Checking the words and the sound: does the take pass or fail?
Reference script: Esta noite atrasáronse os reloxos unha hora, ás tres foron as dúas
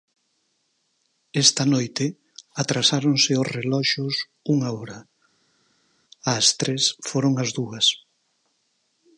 pass